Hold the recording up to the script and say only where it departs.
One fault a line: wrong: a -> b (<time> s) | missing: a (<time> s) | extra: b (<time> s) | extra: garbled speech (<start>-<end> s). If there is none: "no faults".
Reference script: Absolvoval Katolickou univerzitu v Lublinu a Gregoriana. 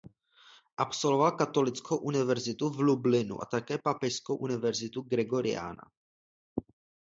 extra: také Papežskou univerzitu (3.5 s)